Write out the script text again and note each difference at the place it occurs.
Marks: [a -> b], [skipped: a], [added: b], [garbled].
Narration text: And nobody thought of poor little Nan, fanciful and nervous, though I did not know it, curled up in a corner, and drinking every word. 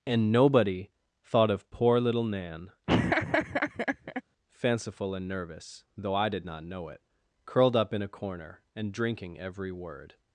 And nobody thought of poor little Nan, fanciful and nervous, though I did not know it, curled up in a corner, and drinking every word.